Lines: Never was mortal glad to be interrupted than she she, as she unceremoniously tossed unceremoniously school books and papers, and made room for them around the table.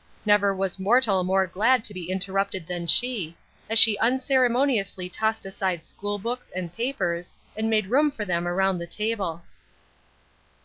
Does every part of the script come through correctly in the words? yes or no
no